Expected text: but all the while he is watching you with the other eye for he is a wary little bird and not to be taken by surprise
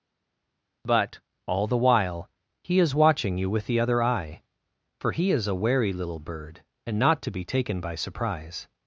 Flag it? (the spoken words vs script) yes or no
no